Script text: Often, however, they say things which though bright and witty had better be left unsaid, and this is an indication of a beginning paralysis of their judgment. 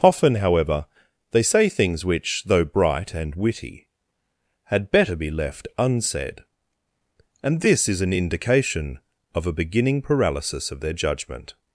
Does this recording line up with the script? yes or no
yes